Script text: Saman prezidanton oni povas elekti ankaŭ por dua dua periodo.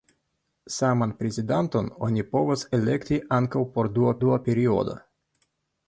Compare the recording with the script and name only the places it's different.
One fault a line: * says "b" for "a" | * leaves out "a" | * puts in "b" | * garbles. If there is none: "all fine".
all fine